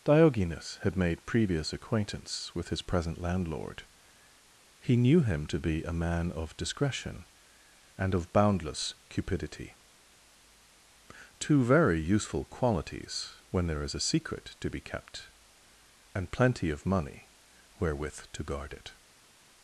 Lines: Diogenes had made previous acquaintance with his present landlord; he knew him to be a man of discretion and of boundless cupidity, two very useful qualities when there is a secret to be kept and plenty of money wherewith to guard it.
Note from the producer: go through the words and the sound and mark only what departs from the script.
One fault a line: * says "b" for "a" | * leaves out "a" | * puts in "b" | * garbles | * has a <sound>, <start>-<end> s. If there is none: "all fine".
all fine